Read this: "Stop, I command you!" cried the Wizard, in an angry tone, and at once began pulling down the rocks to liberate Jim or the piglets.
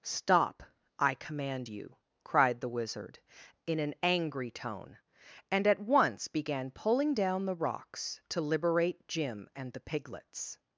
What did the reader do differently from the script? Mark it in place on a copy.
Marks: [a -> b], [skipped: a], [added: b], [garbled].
"Stop, I command you!" cried the Wizard, in an angry tone, and at once began pulling down the rocks to liberate Jim [or -> and] the piglets.